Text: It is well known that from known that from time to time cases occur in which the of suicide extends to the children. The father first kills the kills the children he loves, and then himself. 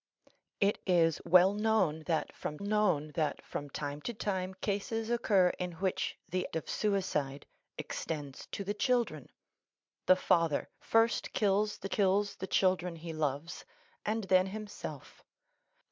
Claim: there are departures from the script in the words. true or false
false